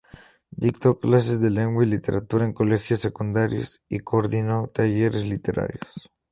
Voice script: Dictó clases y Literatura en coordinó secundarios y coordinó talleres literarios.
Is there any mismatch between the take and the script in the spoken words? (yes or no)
yes